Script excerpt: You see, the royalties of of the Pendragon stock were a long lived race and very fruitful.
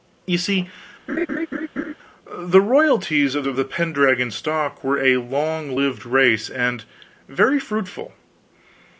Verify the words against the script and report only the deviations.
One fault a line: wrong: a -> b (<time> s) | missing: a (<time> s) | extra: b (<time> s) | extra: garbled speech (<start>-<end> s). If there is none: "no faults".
no faults